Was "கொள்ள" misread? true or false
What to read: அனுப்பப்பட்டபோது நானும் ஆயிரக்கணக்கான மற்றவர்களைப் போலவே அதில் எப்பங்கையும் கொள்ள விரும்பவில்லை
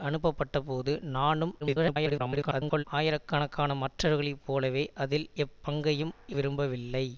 true